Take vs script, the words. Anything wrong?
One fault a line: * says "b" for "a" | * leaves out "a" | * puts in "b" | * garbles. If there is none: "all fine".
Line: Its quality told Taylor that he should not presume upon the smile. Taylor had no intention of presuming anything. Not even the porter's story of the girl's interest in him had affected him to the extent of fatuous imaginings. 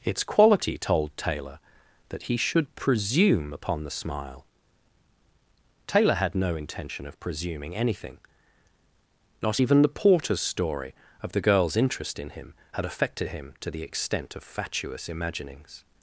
* leaves out "not"